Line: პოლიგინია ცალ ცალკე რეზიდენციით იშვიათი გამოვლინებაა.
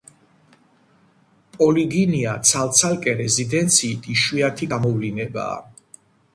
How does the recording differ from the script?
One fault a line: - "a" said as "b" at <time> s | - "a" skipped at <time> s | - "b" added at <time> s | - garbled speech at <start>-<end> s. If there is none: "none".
none